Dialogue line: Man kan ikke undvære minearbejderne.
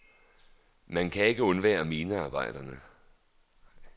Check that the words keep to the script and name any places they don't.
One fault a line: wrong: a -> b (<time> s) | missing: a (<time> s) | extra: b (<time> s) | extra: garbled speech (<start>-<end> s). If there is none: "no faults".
no faults